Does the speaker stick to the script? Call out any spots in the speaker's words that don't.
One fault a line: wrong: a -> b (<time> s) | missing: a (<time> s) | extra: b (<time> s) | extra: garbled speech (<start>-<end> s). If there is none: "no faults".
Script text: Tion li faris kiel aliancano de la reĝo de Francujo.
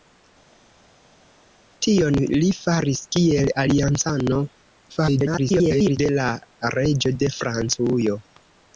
extra: garbled speech (4.9-6.0 s)